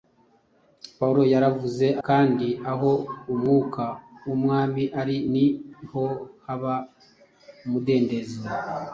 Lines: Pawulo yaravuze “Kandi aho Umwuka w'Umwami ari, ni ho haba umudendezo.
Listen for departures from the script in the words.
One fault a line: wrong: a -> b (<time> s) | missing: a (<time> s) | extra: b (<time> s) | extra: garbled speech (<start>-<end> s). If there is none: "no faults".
no faults